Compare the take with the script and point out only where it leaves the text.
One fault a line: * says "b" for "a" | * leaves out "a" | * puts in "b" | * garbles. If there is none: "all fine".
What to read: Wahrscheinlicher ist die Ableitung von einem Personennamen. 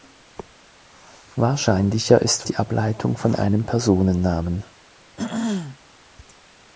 all fine